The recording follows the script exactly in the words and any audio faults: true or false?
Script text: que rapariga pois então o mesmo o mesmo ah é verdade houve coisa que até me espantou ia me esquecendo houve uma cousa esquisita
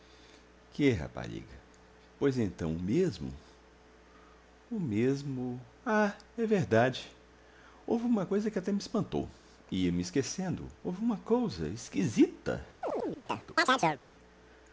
false